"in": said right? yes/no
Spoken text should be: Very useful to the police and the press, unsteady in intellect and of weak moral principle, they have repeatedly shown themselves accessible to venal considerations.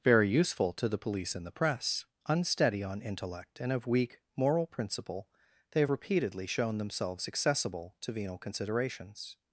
no